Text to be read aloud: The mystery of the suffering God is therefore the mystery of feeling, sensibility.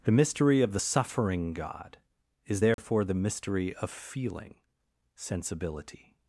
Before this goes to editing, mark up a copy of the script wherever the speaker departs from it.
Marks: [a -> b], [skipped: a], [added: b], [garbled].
The mystery of the suffering God is therefore the mystery of feeling, sensibility.